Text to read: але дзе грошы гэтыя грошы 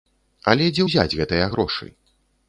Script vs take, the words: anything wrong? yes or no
yes